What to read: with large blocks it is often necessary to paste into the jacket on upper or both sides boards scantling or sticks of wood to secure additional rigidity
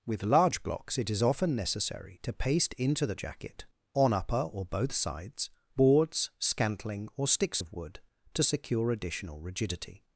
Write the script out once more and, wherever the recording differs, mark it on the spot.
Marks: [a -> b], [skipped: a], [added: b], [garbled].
with large blocks it is often necessary to paste into the jacket on upper or both sides boards scantling or sticks of wood to secure additional rigidity